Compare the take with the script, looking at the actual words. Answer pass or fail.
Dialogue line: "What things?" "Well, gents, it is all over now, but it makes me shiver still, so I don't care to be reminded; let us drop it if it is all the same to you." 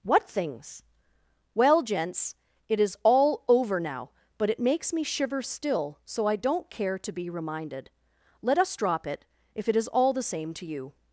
pass